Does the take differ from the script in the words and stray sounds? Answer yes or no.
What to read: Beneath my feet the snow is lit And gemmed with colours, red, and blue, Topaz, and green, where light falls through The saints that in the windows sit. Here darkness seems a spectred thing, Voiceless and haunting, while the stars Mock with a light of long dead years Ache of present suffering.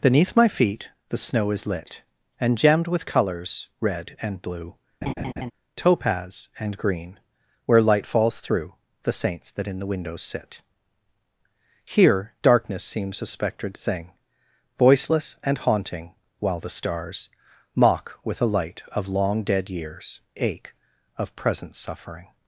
yes